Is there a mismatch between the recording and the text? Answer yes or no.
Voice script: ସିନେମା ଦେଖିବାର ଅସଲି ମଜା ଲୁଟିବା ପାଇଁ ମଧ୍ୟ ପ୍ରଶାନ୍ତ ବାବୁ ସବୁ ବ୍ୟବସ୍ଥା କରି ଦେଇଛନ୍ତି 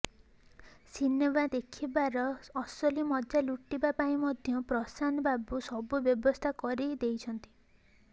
no